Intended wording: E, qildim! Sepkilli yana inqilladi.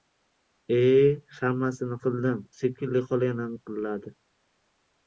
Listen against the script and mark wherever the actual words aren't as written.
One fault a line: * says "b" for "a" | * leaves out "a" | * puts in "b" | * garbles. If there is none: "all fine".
* puts in "hammasini"
* puts in "xola"